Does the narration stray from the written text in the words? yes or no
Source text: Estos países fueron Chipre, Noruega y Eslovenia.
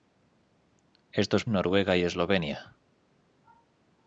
yes